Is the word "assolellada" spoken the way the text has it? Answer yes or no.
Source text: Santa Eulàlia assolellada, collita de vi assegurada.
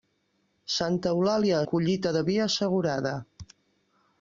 no